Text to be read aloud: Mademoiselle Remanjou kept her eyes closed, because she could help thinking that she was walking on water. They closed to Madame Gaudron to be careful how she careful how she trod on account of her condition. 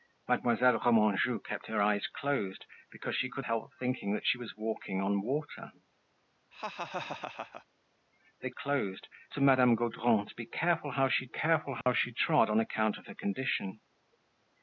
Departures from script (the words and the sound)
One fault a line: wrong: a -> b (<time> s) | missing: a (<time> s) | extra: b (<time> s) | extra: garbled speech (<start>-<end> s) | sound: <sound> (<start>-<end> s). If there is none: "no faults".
sound: laugh (6.5-7.7 s)
sound: dropout (11.8-11.9 s)